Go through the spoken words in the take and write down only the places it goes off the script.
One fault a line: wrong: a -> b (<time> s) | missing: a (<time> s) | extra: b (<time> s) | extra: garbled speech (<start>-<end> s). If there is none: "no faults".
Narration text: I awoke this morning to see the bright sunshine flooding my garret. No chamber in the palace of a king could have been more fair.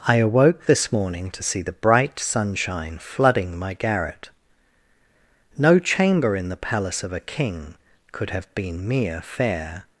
wrong: more -> mere (8.9 s)